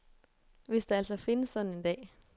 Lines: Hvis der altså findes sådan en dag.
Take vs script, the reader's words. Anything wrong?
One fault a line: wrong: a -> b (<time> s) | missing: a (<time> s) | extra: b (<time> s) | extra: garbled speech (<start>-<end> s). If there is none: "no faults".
no faults